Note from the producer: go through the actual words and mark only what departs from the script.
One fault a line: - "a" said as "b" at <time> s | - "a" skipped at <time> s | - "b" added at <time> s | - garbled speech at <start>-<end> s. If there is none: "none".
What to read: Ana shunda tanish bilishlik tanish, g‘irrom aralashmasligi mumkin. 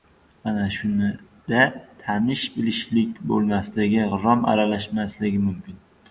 - "tanish" said as "bo‘lmasligi" at 3.3 s